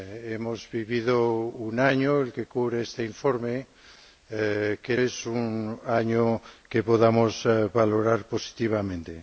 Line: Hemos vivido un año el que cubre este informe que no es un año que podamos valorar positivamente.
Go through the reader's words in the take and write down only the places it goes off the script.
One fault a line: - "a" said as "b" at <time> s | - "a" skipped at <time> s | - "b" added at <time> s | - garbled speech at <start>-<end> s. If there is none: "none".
- "no" skipped at 5.0 s